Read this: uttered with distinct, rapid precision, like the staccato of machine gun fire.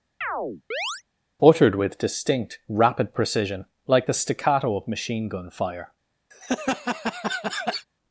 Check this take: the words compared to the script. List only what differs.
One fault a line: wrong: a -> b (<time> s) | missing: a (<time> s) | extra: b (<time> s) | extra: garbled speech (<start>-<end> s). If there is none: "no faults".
no faults